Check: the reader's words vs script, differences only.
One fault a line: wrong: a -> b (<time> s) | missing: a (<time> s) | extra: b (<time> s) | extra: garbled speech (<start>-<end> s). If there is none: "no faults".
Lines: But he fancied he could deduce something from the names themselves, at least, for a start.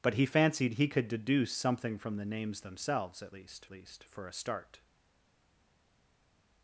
extra: least (3.7 s)